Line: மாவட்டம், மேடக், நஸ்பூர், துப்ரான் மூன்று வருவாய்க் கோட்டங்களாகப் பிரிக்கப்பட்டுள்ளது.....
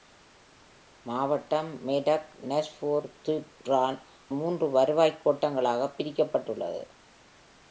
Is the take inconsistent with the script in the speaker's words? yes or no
no